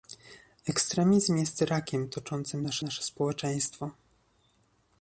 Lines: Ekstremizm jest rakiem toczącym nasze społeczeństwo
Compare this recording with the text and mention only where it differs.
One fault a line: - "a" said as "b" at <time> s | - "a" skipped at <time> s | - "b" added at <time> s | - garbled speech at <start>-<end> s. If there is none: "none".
- "nasze" added at 2.8 s